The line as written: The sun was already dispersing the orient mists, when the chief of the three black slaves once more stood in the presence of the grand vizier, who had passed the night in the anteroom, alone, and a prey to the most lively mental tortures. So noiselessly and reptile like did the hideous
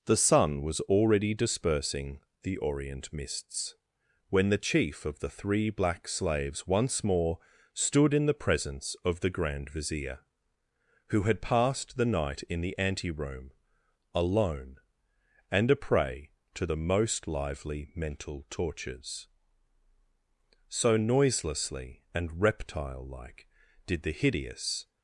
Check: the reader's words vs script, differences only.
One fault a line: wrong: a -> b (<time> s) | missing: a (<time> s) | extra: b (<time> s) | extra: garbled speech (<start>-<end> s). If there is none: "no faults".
no faults